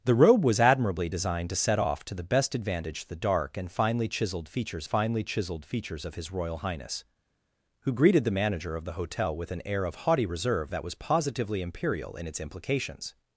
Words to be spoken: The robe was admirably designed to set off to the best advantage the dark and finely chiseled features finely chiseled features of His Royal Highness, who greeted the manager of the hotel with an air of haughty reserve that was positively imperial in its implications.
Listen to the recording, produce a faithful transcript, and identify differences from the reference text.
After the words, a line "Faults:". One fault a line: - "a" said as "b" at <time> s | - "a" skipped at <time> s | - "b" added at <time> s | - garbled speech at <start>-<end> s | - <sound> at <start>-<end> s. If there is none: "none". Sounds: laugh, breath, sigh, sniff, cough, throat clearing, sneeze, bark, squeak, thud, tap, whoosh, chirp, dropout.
The robe was admirably designed to set off to the best advantage the dark and finely chiseled features finely chiseled features of His Royal Highness, who greeted the manager of the hotel with an air of haughty reserve that was positively imperial in its implications.
Faults:
none